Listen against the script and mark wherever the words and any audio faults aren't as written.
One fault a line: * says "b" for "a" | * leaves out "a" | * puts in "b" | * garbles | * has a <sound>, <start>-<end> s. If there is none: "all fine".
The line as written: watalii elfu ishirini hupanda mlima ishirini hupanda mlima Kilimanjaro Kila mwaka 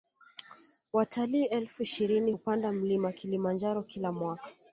* leaves out "ishirini hupanda mlima"